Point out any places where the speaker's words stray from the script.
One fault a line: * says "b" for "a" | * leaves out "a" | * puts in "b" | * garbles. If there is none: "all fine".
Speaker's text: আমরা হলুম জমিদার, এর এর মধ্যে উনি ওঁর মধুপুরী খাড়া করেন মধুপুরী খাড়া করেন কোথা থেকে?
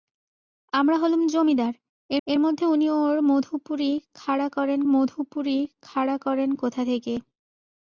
all fine